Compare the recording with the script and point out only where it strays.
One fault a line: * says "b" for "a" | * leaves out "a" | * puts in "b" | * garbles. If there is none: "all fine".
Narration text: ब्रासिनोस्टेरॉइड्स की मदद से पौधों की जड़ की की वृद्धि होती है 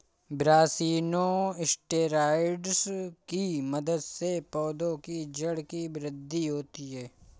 * leaves out "की"